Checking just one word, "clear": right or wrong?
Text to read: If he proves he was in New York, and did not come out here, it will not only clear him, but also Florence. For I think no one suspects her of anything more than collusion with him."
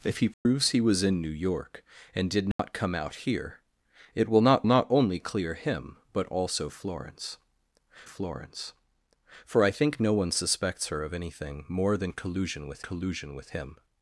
right